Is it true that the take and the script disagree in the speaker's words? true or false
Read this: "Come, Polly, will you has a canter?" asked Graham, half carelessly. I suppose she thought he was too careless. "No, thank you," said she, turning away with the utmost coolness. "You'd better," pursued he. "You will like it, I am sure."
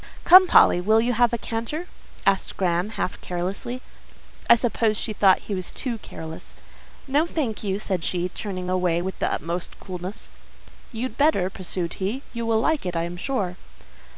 true